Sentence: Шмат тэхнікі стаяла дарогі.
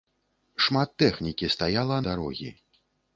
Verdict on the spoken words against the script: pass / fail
pass